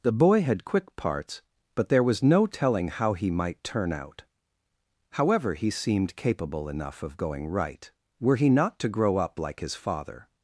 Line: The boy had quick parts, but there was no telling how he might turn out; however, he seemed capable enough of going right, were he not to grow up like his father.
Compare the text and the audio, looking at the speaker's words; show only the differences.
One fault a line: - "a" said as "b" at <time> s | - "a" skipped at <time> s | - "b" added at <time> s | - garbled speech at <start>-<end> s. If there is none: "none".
none